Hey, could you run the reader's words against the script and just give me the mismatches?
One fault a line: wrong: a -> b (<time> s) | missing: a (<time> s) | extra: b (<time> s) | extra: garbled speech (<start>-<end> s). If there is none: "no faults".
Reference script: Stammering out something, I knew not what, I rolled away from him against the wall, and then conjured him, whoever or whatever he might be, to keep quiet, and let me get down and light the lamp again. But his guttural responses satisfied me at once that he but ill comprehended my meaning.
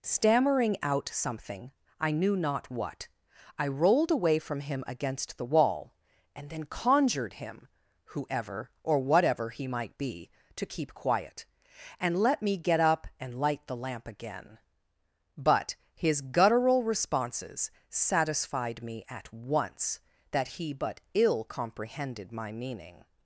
wrong: down -> up (12.8 s)